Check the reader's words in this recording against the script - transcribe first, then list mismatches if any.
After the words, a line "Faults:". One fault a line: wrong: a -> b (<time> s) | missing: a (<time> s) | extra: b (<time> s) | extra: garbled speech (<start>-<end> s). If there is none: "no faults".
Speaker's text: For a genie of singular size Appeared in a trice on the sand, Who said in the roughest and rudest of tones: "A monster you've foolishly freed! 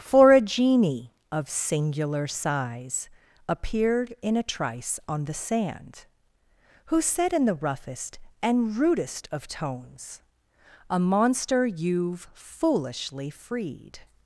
For a genie of singular size Appeared in a trice on the sand, Who said in the roughest and rudest of tones: "A monster you've foolishly freed!
Faults:
no faults